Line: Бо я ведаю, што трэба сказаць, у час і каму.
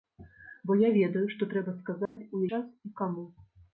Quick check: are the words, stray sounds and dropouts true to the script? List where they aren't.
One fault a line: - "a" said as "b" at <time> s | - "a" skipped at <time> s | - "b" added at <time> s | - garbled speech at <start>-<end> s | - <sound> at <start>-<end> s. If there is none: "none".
- dropout at 2.1-2.2 s